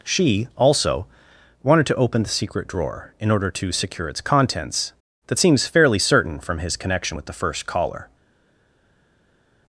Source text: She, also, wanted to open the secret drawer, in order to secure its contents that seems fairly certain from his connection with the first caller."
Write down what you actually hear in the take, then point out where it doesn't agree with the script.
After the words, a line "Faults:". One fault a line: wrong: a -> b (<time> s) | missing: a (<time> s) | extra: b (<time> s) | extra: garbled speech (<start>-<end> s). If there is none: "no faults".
She, also, wanted to open the secret drawer, in order to secure its contents that seems fairly certain from his connection with the first caller."
Faults:
no faults